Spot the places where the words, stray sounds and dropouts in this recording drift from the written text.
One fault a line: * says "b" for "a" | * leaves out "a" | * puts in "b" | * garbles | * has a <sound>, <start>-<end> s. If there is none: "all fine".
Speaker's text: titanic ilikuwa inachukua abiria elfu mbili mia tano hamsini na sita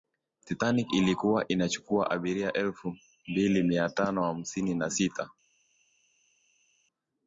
all fine